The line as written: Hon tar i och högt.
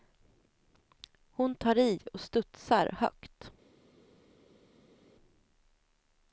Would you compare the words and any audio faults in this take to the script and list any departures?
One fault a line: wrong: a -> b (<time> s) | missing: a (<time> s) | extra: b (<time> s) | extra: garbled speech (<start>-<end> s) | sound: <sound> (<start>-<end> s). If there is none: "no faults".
extra: studsar (2.2 s)